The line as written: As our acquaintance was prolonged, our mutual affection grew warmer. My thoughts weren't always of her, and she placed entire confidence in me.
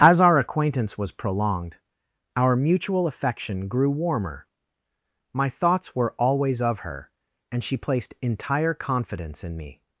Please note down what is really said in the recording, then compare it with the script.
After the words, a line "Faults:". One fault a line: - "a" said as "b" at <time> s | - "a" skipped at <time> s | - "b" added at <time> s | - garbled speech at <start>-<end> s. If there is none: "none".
As our acquaintance was prolonged, our mutual affection grew warmer. My thoughts were always of her, and she placed entire confidence in me.
Faults:
- "weren't" said as "were" at 6.0 s